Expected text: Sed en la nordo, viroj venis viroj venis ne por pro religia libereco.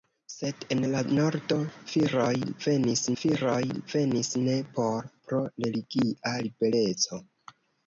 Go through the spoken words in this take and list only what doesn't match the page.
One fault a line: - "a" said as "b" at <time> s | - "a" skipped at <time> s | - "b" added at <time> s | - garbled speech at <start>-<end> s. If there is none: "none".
none